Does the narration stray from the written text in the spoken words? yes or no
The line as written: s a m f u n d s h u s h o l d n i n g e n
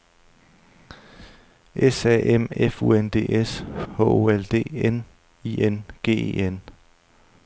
yes